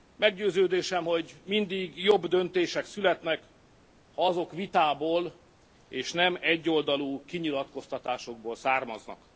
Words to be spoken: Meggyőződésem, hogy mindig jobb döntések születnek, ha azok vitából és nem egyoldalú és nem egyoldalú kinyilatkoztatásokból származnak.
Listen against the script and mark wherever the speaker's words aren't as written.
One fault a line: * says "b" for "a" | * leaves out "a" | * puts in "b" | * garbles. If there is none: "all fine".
* leaves out "és nem egyoldalú"